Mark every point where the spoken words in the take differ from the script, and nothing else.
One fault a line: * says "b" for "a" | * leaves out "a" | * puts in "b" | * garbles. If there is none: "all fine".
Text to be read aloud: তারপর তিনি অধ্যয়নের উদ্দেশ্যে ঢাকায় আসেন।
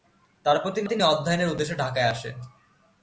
* puts in "তিনি"